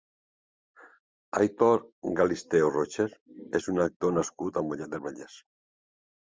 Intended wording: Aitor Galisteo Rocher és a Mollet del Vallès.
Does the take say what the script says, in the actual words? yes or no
no